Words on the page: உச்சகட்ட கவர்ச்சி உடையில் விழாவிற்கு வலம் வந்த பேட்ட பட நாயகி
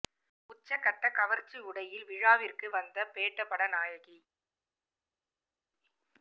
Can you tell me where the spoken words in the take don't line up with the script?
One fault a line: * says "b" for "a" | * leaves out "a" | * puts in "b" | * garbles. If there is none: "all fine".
* leaves out "வலம்"